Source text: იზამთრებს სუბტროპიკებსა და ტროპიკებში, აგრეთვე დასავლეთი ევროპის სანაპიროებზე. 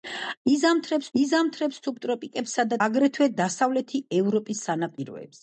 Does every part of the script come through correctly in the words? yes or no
no